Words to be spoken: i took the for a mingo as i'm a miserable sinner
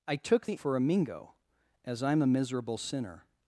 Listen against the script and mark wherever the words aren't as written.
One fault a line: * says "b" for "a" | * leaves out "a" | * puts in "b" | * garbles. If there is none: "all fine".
all fine